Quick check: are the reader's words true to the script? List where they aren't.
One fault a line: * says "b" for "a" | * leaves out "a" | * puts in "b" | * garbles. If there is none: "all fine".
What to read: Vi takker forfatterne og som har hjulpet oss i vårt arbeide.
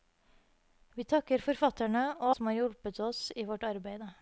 all fine